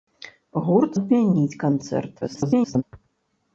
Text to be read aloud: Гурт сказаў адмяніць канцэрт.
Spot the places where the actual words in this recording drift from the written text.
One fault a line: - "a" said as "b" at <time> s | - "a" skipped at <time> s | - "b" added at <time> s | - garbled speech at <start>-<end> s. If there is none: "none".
- "сказаў" skipped at 0.9 s
- garbled speech at 2.2-2.8 s